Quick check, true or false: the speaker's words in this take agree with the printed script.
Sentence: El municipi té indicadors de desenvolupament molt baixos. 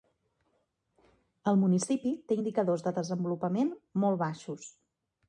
true